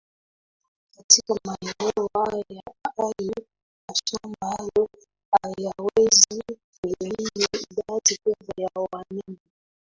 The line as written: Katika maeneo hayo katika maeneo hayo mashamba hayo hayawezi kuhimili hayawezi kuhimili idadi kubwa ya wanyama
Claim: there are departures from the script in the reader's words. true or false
true